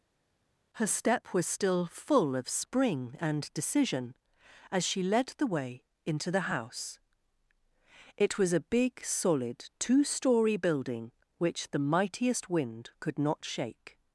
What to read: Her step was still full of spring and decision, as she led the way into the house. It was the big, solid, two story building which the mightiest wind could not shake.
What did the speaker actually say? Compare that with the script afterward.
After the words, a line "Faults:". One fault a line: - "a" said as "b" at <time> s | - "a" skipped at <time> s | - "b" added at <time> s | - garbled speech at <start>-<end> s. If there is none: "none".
Her step was still full of spring and decision, as she led the way into the house. It was a big, solid, two story building which the mightiest wind could not shake.
Faults:
- "the" said as "a" at 8.5 s